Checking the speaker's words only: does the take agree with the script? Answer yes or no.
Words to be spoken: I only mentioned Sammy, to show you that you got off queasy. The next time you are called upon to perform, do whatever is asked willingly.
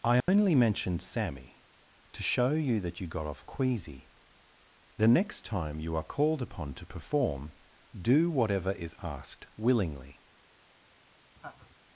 yes